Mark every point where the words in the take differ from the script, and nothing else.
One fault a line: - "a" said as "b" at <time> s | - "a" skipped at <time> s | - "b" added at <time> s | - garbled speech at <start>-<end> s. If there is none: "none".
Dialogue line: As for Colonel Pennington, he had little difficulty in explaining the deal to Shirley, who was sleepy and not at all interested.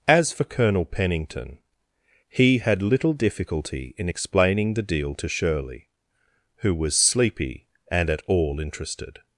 - "not" skipped at 8.1 s